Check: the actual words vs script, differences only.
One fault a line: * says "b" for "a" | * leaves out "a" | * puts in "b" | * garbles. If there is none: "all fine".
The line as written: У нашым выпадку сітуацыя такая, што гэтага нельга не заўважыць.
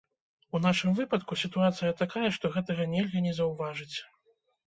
all fine